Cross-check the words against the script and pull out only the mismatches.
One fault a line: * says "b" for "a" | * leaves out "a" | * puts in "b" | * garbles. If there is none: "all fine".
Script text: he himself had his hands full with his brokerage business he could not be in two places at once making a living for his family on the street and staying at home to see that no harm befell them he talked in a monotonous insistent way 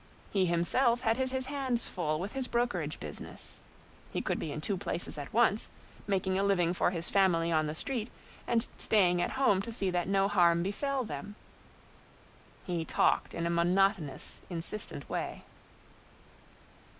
* puts in "his"
* leaves out "not"